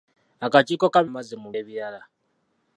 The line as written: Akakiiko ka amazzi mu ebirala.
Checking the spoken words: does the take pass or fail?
pass